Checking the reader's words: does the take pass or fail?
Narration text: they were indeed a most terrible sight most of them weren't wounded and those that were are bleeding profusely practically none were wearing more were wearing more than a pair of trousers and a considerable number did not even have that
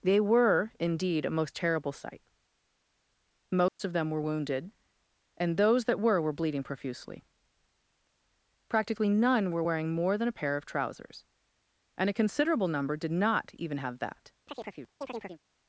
fail